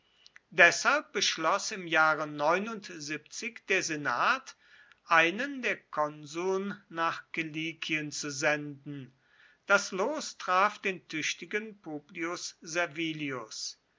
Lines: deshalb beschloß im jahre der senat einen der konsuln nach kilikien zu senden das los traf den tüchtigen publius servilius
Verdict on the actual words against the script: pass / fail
pass